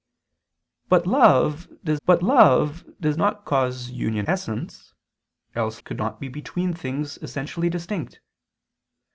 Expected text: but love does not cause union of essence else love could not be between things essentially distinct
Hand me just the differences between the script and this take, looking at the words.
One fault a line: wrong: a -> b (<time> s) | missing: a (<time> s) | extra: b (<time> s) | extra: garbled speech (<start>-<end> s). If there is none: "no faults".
extra: but love does (2.1 s)
missing: of (4.3 s)
missing: love (5.8 s)